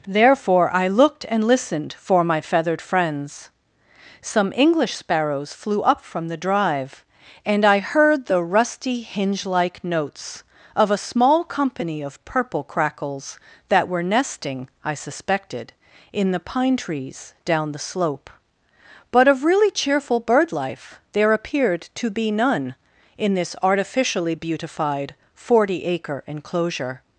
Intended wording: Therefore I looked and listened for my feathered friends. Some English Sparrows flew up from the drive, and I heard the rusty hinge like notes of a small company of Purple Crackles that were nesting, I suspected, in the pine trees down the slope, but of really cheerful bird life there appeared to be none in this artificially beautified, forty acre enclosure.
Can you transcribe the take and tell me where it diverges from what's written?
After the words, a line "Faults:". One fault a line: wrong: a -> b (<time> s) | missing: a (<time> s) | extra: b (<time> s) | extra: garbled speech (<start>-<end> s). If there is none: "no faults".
Therefore I looked and listened for my feathered friends. Some English Sparrows flew up from the drive, and I heard the rusty hinge like notes of a small company of Purple Crackles that were nesting, I suspected, in the pine trees down the slope, but of really cheerful bird life there appeared to be none in this artificially beautified, forty acre enclosure.
Faults:
no faults